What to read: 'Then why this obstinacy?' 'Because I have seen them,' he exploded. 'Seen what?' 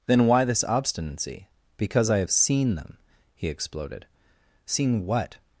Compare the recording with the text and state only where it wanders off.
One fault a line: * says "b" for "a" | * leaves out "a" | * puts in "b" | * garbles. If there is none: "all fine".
all fine